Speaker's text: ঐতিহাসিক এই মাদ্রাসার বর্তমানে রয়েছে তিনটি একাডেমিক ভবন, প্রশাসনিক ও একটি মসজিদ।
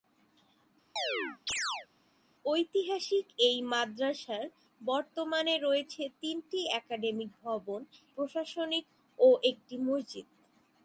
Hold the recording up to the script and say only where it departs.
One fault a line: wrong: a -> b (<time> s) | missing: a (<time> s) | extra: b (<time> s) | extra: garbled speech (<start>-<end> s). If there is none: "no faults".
no faults